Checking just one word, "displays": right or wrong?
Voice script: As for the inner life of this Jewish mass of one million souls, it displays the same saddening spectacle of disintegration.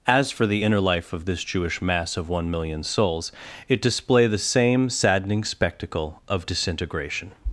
wrong